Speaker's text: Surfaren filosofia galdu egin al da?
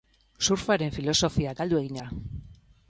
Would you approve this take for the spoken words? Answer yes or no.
no